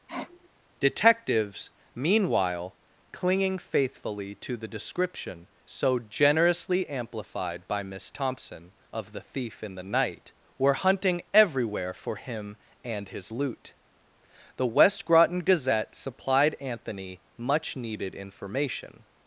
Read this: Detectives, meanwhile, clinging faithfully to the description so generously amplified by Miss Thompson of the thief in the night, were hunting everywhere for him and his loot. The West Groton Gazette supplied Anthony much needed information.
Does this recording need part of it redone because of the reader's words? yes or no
no